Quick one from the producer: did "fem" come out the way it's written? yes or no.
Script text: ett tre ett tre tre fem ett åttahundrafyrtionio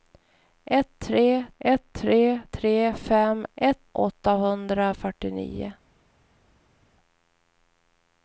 yes